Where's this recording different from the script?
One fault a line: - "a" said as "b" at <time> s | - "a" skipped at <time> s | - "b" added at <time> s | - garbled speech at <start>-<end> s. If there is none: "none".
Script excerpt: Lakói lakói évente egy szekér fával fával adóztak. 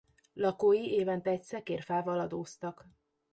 - "lakói" skipped at 0.9 s
- "fával" skipped at 2.2 s